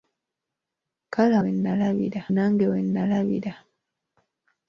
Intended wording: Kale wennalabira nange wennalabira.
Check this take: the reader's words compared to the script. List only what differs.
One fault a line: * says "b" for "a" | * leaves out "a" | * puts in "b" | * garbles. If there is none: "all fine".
all fine